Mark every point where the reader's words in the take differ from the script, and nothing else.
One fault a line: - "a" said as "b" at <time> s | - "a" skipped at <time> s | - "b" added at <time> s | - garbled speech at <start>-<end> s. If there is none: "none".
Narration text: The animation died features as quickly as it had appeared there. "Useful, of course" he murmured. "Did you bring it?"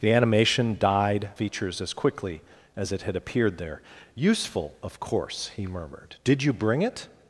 none